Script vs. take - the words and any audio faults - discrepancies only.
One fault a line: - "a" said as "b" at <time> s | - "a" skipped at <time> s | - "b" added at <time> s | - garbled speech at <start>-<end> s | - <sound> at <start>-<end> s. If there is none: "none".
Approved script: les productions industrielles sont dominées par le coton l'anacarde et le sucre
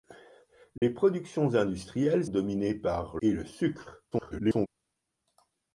- dropout at 0.8-0.8 s
- "sont" skipped at 2.2 s
- "le coton l'anacarde" skipped at 3.2 s
- garbled speech at 4.1-4.7 s